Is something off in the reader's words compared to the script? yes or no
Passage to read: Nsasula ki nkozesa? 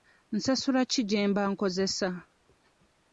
yes